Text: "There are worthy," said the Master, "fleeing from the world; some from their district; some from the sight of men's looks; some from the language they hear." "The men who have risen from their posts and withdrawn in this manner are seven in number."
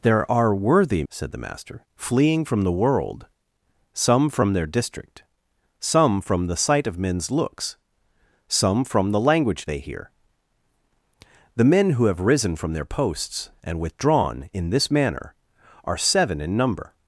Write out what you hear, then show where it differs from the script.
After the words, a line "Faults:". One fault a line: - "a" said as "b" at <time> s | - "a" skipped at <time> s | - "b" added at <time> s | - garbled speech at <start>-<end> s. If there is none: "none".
"There are worthy," said the Master, "fleeing from the world; some from their district; some from the sight of men's looks; some from the language they hear." "The men who have risen from their posts and withdrawn in this manner are seven in number."
Faults:
none